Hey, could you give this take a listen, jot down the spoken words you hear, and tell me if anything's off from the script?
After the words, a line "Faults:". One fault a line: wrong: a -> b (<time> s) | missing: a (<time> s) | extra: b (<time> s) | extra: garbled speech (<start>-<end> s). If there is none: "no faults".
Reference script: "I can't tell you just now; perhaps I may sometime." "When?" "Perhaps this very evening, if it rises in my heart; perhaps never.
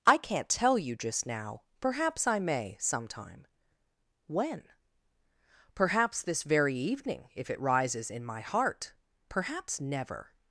"I can't tell you just now; perhaps I may sometime." "When?" "Perhaps this very evening, if it rises in my heart; perhaps never.
Faults:
no faults